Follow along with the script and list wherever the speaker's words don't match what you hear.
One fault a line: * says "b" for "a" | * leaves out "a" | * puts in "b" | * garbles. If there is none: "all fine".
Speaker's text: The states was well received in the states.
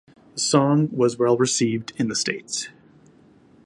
* says "song" for "states"